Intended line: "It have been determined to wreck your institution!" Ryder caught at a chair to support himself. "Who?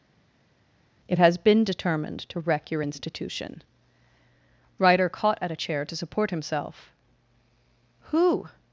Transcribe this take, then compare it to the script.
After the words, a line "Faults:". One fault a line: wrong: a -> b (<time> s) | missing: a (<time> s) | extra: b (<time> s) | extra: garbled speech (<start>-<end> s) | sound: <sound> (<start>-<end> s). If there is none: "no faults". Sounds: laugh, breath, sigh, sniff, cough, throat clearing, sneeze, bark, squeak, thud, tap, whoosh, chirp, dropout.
"It has been determined to wreck your institution!" Ryder caught at a chair to support himself. "Who?
Faults:
wrong: have -> has (1.2 s)